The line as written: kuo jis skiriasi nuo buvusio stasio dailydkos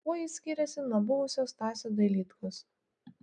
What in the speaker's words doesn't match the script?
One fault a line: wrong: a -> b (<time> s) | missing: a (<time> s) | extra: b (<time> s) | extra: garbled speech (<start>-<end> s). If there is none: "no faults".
no faults